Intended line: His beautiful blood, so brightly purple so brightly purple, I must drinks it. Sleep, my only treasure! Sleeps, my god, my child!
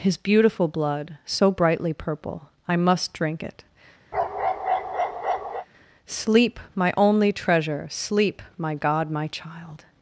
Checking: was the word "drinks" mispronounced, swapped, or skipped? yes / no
yes